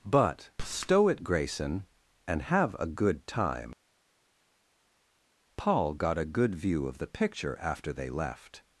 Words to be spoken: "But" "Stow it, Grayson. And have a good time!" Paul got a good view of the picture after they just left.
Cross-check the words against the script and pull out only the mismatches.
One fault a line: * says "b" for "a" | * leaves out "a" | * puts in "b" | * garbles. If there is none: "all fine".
* leaves out "just"